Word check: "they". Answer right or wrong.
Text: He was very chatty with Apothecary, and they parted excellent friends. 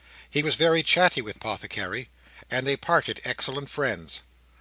right